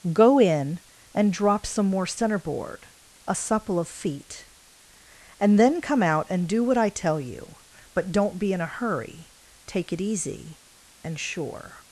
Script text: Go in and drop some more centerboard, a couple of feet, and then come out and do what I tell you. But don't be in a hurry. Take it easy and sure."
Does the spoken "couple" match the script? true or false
false